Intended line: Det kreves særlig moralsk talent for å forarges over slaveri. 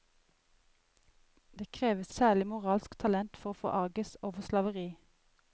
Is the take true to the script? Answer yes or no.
yes